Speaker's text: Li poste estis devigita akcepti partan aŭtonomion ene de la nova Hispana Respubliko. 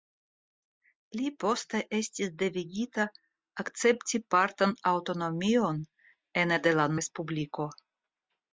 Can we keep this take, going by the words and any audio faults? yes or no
no